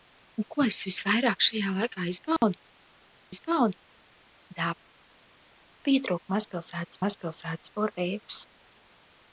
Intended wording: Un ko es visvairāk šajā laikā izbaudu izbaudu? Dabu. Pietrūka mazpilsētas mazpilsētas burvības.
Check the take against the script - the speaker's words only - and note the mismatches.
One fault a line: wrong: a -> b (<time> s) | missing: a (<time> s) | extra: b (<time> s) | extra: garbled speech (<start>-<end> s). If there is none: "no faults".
no faults